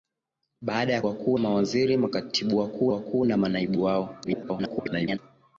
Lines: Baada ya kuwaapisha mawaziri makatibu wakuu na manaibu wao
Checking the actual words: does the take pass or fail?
fail